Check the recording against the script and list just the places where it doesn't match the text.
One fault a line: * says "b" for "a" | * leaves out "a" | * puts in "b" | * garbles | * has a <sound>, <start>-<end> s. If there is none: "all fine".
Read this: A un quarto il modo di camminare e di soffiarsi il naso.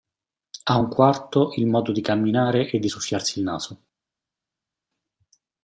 all fine